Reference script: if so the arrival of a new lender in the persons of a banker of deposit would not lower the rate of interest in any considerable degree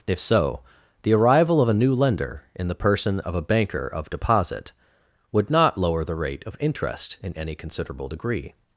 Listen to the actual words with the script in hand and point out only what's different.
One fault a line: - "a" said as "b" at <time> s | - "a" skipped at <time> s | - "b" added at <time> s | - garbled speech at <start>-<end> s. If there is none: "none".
- "persons" said as "person" at 2.7 s